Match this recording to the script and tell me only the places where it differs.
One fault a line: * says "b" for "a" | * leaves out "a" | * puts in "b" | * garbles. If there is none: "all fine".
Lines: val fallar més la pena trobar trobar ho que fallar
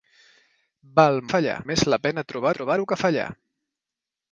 all fine